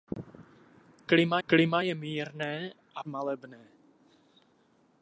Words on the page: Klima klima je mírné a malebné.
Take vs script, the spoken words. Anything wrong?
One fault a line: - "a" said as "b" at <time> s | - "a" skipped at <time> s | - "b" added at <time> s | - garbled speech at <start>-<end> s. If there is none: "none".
none